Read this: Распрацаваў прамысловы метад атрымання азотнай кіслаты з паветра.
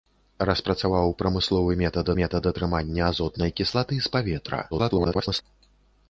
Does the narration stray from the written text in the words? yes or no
yes